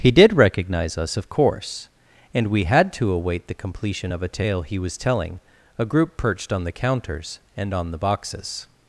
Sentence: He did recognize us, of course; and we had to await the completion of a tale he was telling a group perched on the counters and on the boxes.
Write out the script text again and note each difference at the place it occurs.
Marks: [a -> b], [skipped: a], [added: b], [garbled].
He did recognize us, of course; and we had to await the completion of a tale he was telling a group perched on the counters and on the boxes.